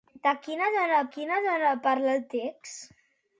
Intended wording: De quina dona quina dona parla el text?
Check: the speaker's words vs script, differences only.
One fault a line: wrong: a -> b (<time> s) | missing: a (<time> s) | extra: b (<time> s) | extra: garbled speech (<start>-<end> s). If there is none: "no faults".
no faults